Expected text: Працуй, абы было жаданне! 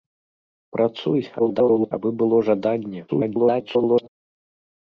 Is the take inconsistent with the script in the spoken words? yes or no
yes